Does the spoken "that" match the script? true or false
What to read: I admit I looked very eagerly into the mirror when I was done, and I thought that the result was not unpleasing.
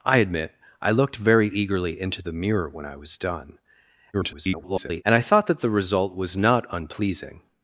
true